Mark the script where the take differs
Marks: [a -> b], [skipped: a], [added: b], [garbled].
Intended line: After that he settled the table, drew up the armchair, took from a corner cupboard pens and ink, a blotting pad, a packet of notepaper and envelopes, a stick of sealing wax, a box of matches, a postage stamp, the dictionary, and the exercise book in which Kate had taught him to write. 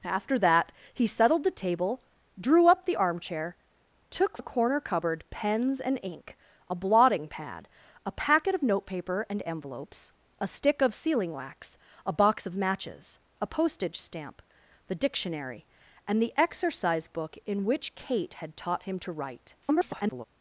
After that he settled the table, drew up the armchair, took [skipped: from] a corner cupboard pens and ink, a blotting pad, a packet of notepaper and envelopes, a stick of sealing wax, a box of matches, a postage stamp, the dictionary, and the exercise book in which Kate had taught him to write. [garbled]